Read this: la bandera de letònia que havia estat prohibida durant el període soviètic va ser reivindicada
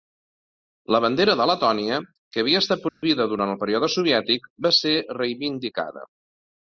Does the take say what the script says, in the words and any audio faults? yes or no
no